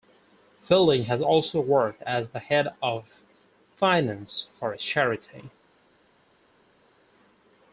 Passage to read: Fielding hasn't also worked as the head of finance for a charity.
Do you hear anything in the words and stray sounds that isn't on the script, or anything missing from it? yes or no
yes